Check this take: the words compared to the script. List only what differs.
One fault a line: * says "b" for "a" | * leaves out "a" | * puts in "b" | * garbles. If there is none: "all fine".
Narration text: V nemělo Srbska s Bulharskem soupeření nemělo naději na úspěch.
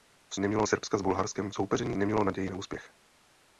all fine